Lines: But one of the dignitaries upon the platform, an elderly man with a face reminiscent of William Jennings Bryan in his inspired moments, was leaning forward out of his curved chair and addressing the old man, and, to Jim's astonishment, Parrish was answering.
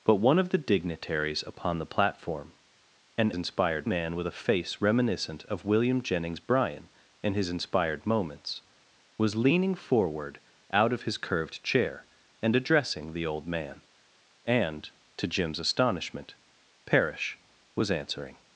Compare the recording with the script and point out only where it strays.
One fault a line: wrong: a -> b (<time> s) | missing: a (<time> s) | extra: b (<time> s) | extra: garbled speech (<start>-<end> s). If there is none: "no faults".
wrong: elderly -> inspired (3.3 s)